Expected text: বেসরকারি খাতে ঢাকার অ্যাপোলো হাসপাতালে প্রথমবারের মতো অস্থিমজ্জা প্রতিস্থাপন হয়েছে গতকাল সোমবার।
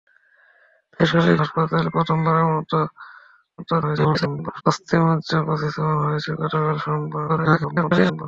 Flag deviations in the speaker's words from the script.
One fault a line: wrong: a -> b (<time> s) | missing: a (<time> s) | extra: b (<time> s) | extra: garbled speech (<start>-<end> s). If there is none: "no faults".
missing: খাতে ঢাকার অ্যাপোলো (1.4 s)
extra: garbled speech (3.6-4.6 s)
extra: garbled speech (7.3-8.2 s)